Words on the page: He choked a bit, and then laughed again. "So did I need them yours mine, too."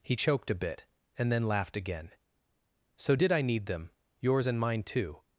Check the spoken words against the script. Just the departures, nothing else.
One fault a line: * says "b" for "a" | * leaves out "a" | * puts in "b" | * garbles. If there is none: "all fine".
* puts in "and"